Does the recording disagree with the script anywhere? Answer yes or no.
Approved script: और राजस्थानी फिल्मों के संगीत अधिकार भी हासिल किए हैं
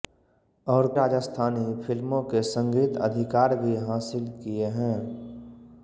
no